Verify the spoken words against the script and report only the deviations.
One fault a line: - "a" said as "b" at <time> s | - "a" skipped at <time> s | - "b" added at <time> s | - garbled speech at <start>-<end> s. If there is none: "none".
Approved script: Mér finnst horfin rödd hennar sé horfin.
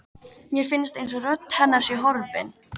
- "horfin" said as "einsog" at 1.0 s